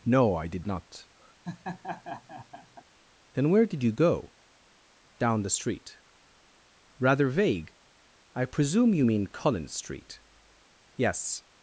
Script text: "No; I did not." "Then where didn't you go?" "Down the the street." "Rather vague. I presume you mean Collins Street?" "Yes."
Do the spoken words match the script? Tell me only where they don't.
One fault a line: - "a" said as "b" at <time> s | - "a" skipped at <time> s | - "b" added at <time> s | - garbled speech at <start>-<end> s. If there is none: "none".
- "didn't" said as "did" at 3.6 s
- "the" skipped at 5.6 s